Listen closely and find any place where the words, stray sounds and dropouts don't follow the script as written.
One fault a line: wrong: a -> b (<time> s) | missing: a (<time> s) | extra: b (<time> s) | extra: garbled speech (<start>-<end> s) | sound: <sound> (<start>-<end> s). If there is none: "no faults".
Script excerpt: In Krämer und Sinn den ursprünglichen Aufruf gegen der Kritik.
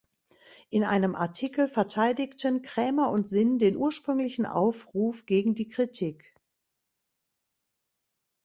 extra: einem Artikel verteidigten (0.8 s)
wrong: der -> die (5.5 s)